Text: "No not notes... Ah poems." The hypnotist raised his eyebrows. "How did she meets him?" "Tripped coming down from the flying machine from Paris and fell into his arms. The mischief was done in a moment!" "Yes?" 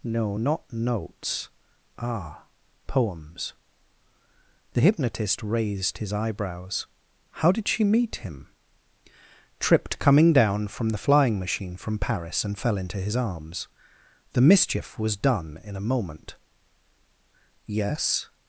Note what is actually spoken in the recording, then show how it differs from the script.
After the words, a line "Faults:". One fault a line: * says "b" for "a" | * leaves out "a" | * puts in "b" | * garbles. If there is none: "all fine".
"No not notes... Ah poems." The hypnotist raised his eyebrows. "How did she meet him?" "Tripped coming down from the flying machine from Paris and fell into his arms. The mischief was done in a moment!" "Yes?"
Faults:
* says "meet" for "meets"